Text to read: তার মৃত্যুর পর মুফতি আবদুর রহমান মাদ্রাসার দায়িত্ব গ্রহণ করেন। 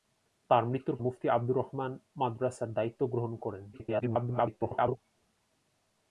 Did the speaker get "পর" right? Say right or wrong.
wrong